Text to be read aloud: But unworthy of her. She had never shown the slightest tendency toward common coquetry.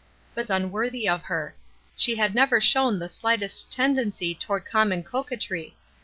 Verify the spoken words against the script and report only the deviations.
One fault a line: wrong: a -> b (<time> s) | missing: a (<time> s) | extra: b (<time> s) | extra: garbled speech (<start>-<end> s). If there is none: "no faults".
no faults